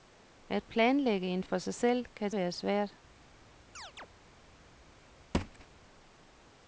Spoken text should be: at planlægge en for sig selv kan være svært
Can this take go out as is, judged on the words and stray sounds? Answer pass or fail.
fail